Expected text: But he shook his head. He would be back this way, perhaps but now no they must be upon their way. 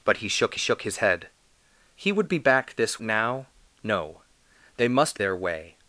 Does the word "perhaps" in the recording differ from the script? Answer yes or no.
yes